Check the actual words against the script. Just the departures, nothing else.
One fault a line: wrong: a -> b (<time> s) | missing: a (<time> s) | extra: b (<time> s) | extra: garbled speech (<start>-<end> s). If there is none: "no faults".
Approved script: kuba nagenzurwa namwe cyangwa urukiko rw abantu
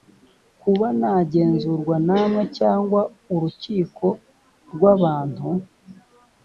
no faults